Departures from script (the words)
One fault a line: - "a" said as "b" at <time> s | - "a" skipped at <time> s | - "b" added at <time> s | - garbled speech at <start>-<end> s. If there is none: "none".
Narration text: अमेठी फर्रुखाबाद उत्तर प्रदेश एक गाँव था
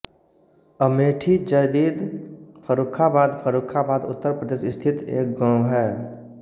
- "जदीद" added at 1.5 s
- "फर्रुखाबाद" added at 3.4 s
- "स्थित" added at 4.7 s
- "था" said as "है" at 5.7 s